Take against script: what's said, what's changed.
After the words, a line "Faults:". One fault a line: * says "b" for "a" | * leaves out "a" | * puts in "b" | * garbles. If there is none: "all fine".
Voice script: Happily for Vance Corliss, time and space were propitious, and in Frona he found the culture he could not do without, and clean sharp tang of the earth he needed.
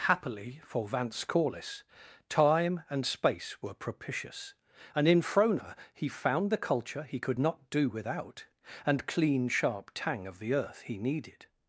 Happily for Vance Corliss, time and space were propitious, and in Frona he found the culture he could not do without, and clean sharp tang of the earth he needed.
Faults:
all fine